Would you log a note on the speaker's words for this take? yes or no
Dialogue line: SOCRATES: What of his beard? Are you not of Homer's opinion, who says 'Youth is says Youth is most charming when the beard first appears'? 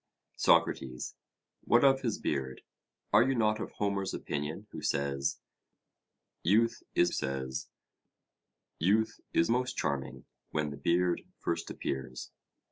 no